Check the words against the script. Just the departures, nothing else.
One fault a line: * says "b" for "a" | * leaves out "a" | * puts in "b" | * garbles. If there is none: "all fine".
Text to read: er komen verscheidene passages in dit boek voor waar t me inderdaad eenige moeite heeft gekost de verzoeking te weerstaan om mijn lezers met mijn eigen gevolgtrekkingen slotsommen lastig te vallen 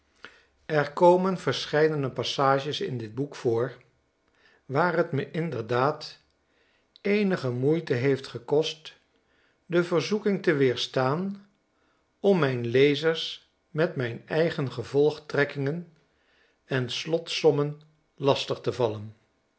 * puts in "en"